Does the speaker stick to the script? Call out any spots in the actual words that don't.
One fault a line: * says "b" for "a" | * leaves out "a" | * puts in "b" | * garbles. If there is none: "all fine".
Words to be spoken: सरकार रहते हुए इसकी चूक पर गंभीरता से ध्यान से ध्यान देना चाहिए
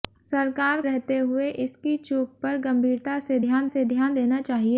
all fine